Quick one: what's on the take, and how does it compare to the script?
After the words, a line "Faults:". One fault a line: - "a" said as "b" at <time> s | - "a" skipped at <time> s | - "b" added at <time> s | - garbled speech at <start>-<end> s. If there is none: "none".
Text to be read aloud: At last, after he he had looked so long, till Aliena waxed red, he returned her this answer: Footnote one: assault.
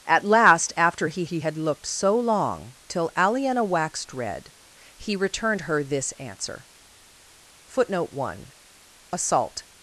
At last, after he he had looked so long, till Aliena waxed red, he returned her this answer: Footnote one: assault.
Faults:
none